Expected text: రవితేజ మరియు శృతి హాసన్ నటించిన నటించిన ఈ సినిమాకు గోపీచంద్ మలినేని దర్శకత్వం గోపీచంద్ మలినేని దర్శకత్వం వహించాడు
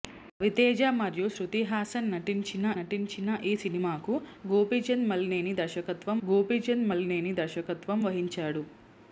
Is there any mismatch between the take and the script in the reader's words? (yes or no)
no